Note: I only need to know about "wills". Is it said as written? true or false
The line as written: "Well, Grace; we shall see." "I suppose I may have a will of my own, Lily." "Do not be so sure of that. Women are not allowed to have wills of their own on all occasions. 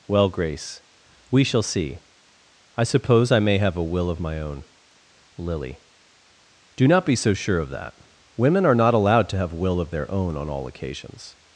false